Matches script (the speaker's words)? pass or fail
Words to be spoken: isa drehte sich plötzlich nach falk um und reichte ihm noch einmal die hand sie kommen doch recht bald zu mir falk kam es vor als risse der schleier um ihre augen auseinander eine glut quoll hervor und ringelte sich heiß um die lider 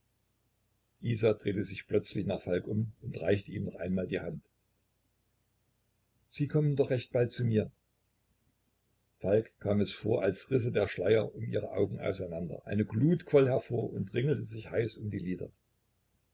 pass